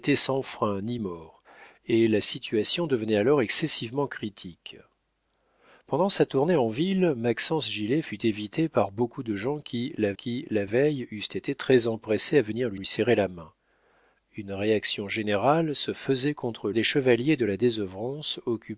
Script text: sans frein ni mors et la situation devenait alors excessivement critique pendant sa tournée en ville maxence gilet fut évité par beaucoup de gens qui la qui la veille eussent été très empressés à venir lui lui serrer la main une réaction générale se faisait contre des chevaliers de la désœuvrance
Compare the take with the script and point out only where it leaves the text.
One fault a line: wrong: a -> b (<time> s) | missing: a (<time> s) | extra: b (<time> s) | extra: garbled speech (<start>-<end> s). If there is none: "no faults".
no faults